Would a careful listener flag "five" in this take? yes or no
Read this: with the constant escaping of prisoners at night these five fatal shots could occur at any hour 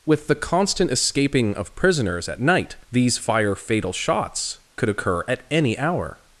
yes